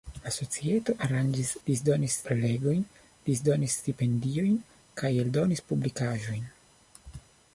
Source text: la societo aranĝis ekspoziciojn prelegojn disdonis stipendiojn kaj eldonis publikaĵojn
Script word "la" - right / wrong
right